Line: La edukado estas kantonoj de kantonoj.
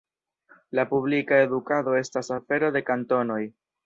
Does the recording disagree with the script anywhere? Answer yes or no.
yes